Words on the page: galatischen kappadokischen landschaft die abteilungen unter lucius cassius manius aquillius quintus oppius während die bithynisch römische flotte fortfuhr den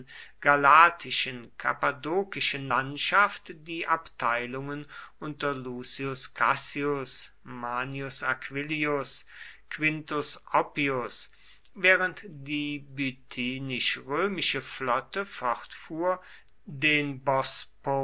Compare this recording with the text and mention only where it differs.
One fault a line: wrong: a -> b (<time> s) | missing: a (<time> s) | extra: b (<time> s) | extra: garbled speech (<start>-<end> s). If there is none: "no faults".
no faults